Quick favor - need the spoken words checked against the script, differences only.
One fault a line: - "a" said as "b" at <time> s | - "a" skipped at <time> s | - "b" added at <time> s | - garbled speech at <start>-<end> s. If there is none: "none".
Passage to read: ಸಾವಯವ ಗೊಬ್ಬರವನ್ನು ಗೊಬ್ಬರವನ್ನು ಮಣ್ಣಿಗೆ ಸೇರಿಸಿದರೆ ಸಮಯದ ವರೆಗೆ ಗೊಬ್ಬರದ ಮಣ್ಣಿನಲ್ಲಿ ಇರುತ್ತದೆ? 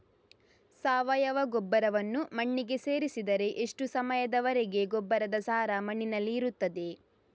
- "ಗೊಬ್ಬರವನ್ನು" skipped at 2.3 s
- "ಎಷ್ಟು" added at 3.6 s
- "ಸಾರ" added at 5.4 s